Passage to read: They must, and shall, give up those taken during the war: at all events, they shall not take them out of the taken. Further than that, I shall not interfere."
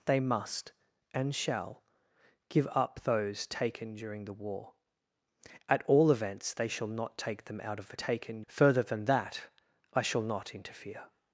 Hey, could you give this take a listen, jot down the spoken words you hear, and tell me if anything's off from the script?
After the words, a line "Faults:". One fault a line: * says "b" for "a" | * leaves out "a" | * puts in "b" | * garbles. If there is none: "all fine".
They must, and shall, give up those taken during the war: at all events, they shall not take them out of the taken. Further than that, I shall not interfere."
Faults:
all fine